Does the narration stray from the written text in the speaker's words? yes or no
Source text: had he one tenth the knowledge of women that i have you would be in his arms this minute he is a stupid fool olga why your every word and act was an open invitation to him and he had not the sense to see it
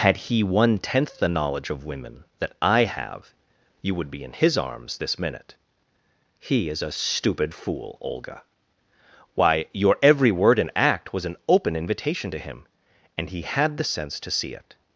yes